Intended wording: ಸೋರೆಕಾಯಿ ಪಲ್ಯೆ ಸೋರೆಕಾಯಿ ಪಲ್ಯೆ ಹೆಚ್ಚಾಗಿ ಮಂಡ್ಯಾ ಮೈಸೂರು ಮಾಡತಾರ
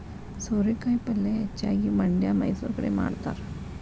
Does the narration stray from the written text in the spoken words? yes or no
yes